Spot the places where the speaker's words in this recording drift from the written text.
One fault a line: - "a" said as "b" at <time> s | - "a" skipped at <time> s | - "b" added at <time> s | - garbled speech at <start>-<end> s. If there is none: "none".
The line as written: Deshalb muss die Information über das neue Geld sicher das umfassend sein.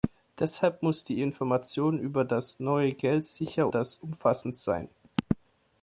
none